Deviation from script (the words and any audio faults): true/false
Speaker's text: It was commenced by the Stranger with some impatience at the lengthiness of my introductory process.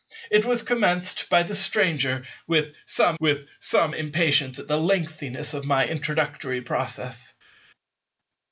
true